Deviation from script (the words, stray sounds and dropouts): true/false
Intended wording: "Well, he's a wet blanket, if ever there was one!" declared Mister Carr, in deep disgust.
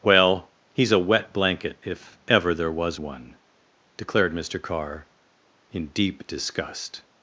false